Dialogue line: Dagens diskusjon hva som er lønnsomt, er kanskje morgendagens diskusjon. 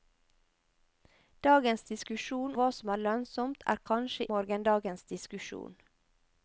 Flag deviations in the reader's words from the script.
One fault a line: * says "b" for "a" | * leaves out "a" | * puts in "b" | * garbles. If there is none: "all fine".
all fine